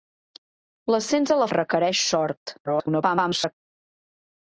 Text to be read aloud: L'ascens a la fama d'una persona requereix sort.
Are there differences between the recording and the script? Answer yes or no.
yes